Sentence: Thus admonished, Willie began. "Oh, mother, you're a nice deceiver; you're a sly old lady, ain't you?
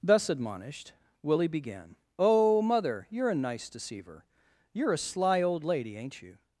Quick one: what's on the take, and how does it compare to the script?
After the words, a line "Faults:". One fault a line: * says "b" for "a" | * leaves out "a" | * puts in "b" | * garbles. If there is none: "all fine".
Thus admonished, Willie began. "Oh, mother, you're a nice deceiver; you're a sly old lady, ain't you?
Faults:
all fine